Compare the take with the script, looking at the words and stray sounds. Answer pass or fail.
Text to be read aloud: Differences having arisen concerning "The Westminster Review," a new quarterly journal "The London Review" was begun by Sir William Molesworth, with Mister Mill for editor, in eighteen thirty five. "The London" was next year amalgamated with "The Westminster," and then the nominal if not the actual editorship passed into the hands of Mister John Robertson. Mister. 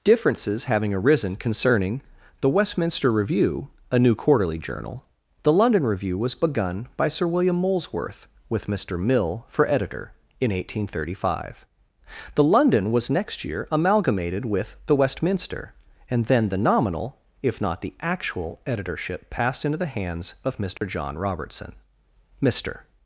fail